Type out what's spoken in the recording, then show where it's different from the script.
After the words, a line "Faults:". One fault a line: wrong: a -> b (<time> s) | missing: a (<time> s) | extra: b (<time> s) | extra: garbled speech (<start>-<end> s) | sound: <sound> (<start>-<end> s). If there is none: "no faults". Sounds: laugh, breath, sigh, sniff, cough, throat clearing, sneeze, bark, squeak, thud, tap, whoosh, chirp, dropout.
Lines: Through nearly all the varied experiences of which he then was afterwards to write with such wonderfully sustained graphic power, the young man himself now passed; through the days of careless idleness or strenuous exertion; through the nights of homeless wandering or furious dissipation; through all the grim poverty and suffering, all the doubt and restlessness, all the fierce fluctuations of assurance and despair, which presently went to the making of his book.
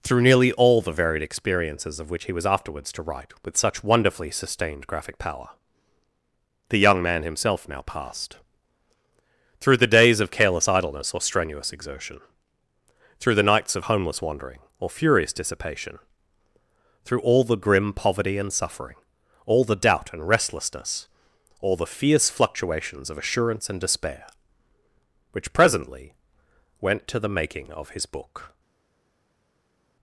Through nearly all the varied experiences of which he was afterwards to write with such wonderfully sustained graphic power, the young man himself now passed; through the days of careless idleness or strenuous exertion; through the nights of homeless wandering or furious dissipation; through all the grim poverty and suffering, all the doubt and restlessness, all the fierce fluctuations of assurance and despair, which presently went to the making of his book.
Faults:
missing: then (2.3 s)